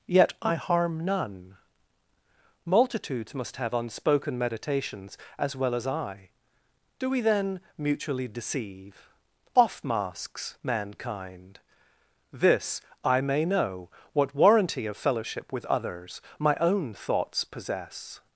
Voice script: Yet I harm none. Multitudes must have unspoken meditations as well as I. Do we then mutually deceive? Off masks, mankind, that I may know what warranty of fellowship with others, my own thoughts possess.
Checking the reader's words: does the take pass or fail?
fail